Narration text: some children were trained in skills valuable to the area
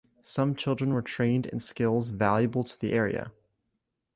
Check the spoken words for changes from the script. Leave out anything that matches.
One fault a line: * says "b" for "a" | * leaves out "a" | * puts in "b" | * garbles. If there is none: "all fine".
all fine